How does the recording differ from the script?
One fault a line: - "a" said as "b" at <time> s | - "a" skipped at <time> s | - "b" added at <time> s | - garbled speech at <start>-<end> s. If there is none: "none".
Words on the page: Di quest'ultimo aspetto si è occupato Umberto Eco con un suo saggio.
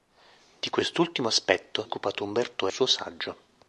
- "si" skipped at 1.9 s
- "Eco con un" skipped at 2.7 s